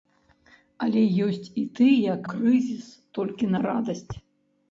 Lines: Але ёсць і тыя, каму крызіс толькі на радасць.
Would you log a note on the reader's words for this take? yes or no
yes